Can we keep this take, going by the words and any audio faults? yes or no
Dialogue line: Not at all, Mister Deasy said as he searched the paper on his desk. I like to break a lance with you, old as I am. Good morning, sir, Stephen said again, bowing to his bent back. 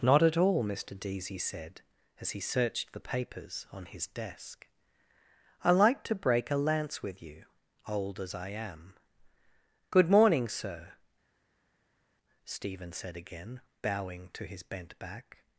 no